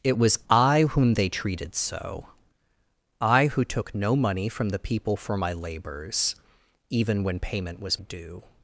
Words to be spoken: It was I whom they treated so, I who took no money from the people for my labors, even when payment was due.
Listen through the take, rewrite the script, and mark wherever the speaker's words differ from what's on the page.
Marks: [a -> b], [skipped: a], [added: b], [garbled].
It was I whom they treated so, I who took no money from the people for my labors, even when payment was due.